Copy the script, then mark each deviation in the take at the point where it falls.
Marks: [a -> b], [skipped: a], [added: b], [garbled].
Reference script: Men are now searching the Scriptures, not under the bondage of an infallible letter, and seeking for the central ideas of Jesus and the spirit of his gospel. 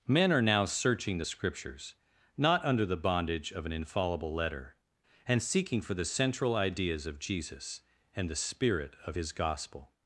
Men are now searching the Scriptures, not under the bondage of an infallible letter, and seeking for the central ideas of Jesus and the spirit of his gospel.